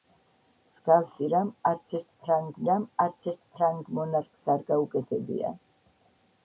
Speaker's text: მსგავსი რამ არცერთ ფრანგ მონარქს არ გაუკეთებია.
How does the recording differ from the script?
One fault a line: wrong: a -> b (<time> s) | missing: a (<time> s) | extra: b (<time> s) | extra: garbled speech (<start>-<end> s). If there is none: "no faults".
extra: რამ არცერთ ფრანგ (2.7 s)